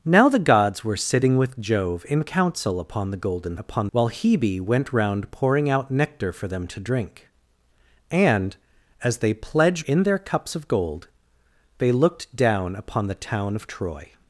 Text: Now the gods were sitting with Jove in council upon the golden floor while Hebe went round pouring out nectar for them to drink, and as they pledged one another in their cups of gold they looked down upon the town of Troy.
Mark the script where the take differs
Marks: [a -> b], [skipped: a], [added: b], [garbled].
Now the gods were sitting with Jove in council upon the golden [floor -> upon] while Hebe went round pouring out nectar for them to drink, and as they pledged [skipped: one another] in their cups of gold they looked down upon the town of Troy.